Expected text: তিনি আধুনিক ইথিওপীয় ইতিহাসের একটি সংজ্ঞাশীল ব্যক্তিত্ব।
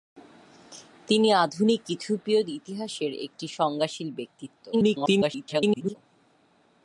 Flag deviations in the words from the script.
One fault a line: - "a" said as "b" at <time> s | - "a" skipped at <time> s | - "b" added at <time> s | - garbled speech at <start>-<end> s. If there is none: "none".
- garbled speech at 4.7-6.0 s